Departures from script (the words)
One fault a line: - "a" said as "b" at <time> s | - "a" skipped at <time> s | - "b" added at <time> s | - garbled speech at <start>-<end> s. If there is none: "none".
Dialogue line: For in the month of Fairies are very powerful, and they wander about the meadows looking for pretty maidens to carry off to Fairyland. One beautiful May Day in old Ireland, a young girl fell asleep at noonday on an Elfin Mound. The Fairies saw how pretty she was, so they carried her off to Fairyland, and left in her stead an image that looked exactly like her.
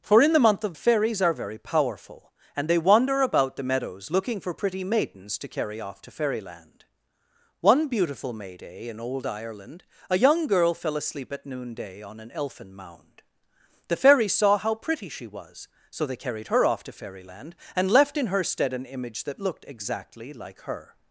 none